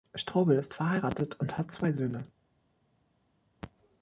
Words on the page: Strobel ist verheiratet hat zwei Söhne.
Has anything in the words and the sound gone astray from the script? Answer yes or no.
yes